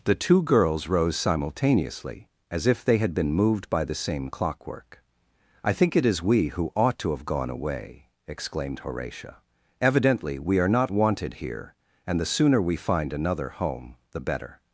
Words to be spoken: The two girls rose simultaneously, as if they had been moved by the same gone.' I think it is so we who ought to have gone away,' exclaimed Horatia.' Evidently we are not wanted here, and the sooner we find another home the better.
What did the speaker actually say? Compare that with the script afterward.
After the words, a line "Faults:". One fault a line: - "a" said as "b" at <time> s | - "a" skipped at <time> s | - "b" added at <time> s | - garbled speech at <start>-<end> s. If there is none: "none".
The two girls rose simultaneously, as if they had been moved by the same clockwork.' I think it is we who ought to have gone away,' exclaimed Horatia.' Evidently we are not wanted here, and the sooner we find another home the better.
Faults:
- "gone" said as "clockwork" at 4.3 s
- "so" skipped at 6.2 s